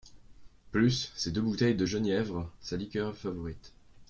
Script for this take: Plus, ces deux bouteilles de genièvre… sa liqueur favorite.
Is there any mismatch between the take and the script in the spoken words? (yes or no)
no